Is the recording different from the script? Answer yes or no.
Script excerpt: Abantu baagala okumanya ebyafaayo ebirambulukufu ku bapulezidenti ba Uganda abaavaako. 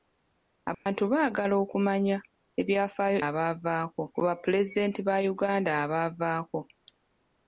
yes